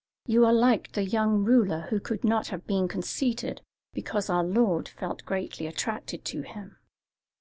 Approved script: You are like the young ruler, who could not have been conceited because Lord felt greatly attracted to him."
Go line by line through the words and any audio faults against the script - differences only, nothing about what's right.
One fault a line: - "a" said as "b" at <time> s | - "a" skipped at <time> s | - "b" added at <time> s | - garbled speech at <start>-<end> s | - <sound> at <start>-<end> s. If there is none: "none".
- "our" added at 4.3 s